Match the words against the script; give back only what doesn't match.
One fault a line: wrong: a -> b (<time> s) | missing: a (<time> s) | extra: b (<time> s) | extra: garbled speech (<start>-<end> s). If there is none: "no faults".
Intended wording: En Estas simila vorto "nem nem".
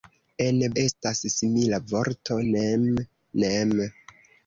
no faults